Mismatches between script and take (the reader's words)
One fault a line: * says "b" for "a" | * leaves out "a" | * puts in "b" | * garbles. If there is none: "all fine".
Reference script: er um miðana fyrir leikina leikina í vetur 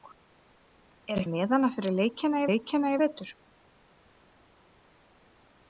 all fine